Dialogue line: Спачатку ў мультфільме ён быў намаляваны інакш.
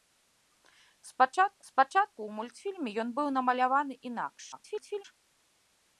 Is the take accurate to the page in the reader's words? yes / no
no